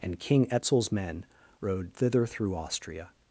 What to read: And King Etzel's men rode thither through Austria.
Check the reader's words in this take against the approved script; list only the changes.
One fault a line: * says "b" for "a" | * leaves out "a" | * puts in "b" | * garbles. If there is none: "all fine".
all fine